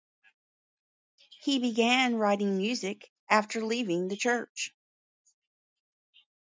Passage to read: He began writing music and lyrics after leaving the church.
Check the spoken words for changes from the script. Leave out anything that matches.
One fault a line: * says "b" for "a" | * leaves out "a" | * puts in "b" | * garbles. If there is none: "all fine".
* leaves out "and lyrics"